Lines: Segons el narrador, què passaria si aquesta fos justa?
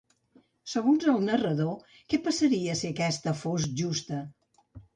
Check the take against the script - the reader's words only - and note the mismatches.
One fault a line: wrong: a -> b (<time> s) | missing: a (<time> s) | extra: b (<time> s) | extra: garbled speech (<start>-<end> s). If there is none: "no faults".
no faults